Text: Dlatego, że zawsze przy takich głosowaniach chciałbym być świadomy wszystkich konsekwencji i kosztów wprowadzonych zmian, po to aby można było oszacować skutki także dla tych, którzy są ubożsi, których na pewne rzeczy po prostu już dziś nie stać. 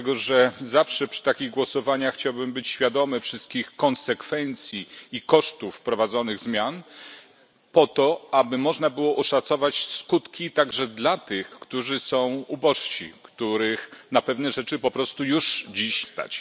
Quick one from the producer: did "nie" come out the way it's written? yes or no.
no